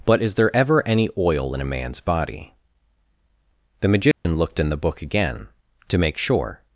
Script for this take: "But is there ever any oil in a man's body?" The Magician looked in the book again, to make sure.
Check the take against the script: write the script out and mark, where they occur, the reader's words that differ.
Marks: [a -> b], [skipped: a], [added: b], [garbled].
"But is there ever any oil in a man's body?" The Magician looked in the book again, to make sure.